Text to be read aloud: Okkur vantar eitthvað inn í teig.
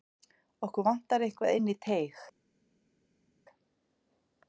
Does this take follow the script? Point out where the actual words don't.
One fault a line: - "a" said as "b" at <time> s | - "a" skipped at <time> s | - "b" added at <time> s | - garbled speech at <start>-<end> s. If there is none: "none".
none